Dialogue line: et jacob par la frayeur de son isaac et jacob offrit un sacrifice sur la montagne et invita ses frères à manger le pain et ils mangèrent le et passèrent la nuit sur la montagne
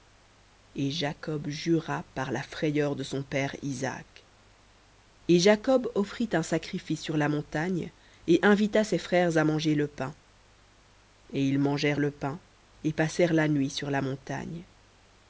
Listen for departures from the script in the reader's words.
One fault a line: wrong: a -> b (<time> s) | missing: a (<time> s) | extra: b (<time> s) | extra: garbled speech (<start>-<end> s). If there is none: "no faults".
extra: jura (1.5 s)
extra: père (3.2 s)
extra: pain (12.1 s)